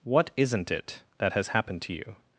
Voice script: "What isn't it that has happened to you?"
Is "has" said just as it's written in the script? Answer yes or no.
yes